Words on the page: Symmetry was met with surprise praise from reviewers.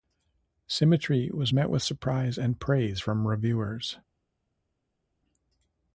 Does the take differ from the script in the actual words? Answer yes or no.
yes